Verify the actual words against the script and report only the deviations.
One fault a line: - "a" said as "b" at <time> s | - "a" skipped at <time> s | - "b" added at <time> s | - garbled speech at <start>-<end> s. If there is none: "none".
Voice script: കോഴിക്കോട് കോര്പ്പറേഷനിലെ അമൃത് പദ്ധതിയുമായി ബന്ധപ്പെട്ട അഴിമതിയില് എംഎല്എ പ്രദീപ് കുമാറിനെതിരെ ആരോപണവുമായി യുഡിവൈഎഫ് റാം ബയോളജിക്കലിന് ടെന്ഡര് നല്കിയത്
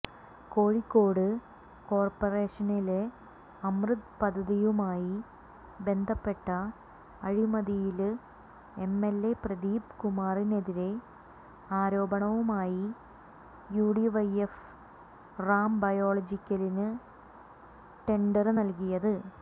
none